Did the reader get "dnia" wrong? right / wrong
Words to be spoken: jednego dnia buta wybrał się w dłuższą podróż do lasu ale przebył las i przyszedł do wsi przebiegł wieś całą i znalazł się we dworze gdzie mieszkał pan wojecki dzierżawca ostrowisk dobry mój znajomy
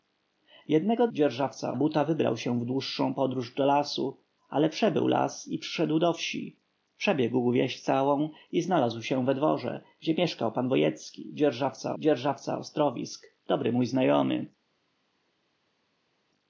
wrong